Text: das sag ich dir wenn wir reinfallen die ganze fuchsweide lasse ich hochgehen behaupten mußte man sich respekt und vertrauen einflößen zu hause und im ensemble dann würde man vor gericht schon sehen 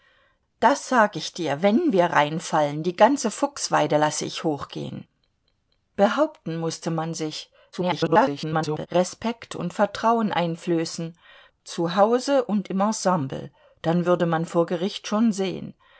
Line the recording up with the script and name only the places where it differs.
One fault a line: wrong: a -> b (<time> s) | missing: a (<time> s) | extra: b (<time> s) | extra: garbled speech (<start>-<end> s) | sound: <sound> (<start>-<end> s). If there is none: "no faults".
extra: garbled speech (7.7-8.9 s)